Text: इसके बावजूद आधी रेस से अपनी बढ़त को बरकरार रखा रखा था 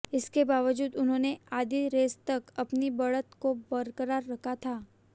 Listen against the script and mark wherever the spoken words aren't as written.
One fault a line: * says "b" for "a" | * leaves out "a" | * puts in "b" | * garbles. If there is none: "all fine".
* puts in "उन्होंने"
* says "तक" for "से"
* leaves out "रखा"